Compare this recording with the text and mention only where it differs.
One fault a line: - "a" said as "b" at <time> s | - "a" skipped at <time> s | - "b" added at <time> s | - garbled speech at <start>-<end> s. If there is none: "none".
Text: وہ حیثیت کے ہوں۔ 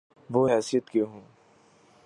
none